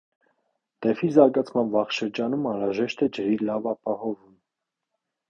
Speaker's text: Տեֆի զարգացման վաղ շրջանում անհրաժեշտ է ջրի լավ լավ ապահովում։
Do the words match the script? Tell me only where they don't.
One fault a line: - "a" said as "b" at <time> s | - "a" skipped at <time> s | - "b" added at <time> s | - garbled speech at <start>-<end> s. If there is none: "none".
- "լավ" skipped at 3.7 s